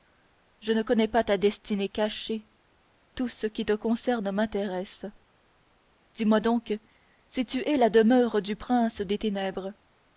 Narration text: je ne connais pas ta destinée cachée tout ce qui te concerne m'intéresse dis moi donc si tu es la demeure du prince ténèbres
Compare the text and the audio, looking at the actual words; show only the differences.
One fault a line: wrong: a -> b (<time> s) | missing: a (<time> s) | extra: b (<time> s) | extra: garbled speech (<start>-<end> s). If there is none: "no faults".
extra: des (9.0 s)